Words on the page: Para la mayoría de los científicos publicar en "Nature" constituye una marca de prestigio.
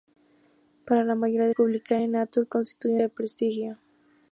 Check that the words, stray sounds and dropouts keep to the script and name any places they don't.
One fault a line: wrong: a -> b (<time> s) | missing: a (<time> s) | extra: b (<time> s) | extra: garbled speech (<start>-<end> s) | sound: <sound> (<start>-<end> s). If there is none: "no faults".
missing: los científicos (1.5 s)
missing: una marca (3.0 s)